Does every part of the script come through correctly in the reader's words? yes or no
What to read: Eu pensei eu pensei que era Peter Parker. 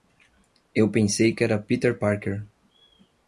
no